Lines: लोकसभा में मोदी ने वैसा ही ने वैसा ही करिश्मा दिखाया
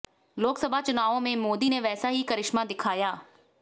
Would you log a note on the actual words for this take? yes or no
yes